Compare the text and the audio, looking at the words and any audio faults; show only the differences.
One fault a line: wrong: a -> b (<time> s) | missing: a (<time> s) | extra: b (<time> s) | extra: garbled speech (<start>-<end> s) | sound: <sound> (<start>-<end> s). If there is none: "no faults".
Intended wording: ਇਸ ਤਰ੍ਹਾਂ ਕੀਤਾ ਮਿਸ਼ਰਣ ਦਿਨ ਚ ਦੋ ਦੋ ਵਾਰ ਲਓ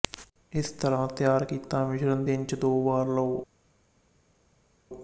extra: ਤਿਆਰ (1.1 s)
missing: ਦੋ (2.8 s)